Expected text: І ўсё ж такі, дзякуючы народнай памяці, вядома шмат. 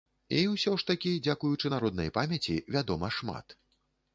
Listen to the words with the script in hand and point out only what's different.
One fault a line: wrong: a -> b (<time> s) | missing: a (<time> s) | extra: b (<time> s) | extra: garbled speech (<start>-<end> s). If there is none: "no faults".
no faults